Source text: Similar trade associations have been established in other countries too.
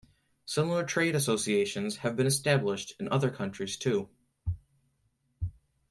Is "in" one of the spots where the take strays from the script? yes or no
no